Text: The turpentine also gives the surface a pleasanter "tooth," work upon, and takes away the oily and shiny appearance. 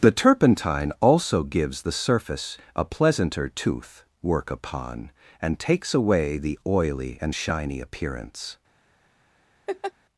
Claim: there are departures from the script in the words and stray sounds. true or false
true